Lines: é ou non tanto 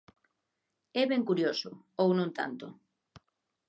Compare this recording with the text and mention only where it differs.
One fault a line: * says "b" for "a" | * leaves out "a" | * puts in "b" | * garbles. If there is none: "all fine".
* puts in "ben curioso"